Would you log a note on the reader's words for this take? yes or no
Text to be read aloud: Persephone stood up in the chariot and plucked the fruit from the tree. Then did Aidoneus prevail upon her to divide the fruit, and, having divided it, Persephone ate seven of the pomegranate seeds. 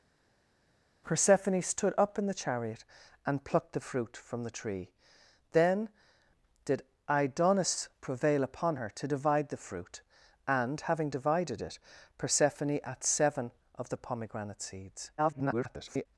yes